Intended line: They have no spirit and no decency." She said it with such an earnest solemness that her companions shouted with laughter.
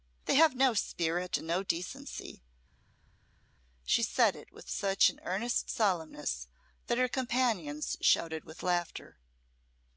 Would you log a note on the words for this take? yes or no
no